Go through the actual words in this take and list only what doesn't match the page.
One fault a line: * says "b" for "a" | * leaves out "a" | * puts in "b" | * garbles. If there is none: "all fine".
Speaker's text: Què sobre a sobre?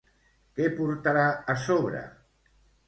* says "portarà" for "sobre"